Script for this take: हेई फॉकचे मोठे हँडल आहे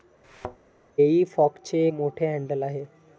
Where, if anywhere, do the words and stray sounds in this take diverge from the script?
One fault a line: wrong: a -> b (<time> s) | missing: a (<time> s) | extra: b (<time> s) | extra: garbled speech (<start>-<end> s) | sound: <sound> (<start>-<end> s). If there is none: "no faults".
sound: thud (0.2-0.6 s)